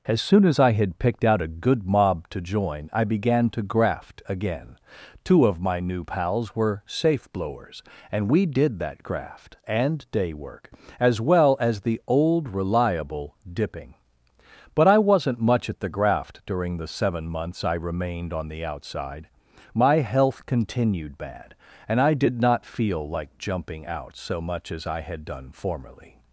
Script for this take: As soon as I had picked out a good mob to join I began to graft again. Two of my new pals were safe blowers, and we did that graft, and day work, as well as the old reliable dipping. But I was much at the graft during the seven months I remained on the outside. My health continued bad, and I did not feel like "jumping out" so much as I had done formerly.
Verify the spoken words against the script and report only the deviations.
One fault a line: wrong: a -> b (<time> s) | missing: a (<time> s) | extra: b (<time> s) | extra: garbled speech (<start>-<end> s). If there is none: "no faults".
wrong: was -> wasn't (15.0 s)